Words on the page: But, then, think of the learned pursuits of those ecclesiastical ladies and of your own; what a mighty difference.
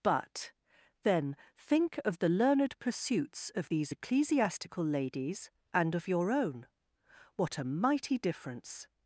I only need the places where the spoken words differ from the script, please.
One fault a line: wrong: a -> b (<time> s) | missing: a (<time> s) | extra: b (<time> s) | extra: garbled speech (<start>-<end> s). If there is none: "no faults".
wrong: those -> these (3.7 s)